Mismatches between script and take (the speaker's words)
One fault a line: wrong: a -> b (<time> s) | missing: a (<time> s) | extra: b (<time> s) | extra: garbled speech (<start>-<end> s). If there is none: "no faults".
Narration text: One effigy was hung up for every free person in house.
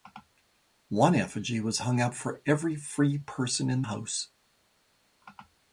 no faults